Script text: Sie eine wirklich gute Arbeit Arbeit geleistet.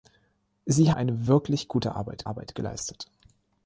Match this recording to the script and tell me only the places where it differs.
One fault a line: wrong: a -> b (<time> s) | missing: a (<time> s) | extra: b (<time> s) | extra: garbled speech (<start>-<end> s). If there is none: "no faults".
no faults